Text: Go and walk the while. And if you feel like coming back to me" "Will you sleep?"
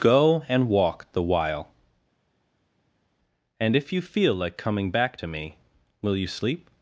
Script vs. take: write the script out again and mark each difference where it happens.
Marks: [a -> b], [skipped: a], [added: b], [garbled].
Go and walk the while. And if you feel like coming back to me" "Will you sleep?"